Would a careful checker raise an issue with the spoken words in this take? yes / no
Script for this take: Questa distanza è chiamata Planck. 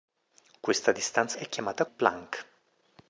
no